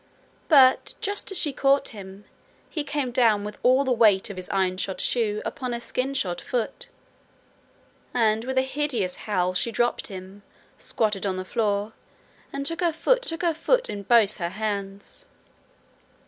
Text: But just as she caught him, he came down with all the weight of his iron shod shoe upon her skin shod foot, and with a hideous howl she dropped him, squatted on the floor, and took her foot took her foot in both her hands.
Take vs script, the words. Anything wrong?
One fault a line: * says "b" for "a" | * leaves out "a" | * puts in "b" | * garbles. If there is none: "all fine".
all fine